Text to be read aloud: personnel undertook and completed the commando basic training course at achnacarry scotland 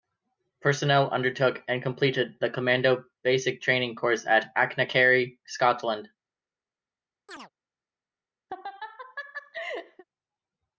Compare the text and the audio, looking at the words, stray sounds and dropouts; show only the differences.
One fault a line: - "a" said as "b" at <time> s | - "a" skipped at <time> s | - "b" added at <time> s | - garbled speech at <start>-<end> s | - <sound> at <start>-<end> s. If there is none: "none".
- chirp at 7.3-7.5 s
- laugh at 8.5-10.0 s